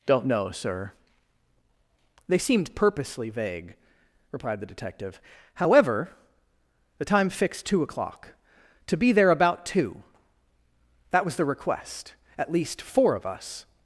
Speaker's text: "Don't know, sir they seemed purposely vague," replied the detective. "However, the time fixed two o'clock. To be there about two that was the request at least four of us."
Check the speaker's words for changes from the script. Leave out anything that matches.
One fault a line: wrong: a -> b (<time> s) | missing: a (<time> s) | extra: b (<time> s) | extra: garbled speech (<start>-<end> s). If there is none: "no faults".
no faults